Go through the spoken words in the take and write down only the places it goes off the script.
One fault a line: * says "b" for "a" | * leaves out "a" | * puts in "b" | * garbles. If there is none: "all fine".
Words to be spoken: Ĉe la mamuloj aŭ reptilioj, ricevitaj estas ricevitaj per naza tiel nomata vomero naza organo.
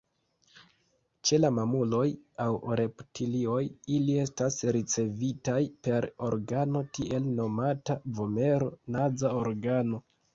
* says "ili" for "ricevitaj"
* says "organo" for "naza"